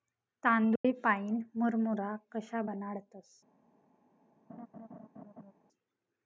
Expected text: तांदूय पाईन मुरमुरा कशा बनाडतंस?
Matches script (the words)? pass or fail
pass